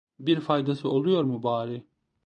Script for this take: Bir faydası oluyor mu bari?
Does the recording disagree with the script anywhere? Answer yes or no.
no